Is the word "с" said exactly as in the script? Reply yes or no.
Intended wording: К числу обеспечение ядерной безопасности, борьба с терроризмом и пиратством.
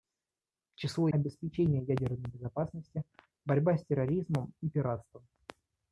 yes